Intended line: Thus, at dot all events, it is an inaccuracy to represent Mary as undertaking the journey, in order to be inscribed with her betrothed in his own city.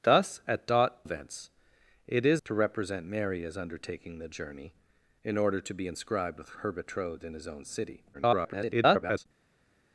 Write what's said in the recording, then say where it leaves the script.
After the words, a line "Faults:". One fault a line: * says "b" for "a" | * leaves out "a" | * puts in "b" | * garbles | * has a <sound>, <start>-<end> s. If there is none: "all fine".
Thus, at dot events, it is to represent Mary as undertaking the journey, in order to be inscribed with her betrothed in his own city. [garbled]
Faults:
* leaves out "all"
* leaves out "an inaccuracy"
* garbles